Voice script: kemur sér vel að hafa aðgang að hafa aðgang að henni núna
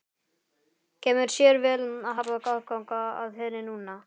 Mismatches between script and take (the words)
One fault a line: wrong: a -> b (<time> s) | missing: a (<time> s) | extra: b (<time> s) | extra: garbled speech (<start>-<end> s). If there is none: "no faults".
missing: hafa aðgang að (3.4 s)